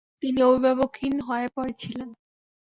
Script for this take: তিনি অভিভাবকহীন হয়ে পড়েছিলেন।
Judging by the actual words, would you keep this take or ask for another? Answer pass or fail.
pass